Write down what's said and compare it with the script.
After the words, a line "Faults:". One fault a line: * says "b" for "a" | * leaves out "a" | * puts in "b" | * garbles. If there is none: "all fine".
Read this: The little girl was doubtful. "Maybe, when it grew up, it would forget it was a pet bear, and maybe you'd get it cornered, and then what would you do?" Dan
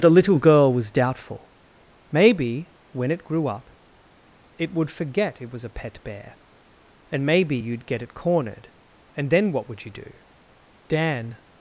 The little girl was doubtful. "Maybe, when it grew up, it would forget it was a pet bear, and maybe you'd get it cornered, and then what would you do?" Dan
Faults:
all fine